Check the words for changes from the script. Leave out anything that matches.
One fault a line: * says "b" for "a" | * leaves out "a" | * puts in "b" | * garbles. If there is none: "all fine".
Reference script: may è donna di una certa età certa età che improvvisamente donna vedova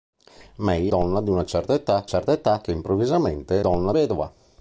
all fine